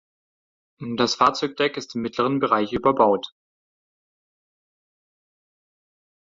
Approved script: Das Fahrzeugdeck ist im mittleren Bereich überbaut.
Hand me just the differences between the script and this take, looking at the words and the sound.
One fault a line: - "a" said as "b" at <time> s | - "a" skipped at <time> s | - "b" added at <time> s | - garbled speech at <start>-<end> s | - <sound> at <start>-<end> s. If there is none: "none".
none